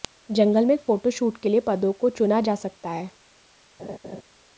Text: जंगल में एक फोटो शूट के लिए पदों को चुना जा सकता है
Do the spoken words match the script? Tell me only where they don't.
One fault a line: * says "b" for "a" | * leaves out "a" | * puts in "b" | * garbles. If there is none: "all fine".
all fine